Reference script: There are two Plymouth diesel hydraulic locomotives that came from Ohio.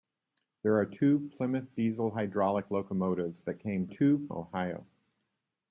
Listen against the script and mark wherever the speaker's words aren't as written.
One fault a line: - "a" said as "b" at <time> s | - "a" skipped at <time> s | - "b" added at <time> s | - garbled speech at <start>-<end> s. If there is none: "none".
- "from" said as "two" at 3.9 s